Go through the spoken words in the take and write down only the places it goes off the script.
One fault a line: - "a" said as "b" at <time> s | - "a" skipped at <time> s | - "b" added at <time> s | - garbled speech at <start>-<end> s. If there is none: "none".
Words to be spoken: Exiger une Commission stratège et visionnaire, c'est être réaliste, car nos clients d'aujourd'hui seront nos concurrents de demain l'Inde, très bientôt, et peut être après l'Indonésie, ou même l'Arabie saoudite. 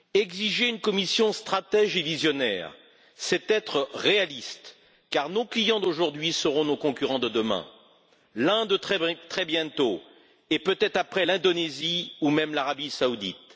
none